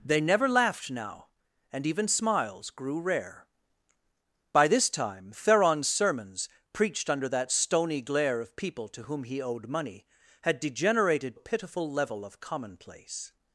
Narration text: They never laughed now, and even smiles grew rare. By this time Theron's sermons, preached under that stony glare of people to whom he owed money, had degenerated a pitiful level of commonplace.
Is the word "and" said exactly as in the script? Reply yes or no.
yes